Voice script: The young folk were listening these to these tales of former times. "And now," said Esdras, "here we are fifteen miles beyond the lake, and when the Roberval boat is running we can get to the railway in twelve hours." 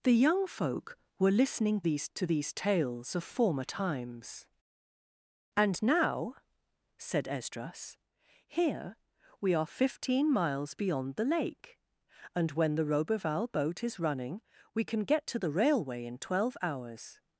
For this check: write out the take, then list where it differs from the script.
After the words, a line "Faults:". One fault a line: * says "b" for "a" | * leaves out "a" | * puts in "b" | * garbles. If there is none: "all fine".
The young folk were listening these to these tales of former times. "And now," said Esdras, "here we are fifteen miles beyond the lake, and when the Roberval boat is running we can get to the railway in twelve hours."
Faults:
all fine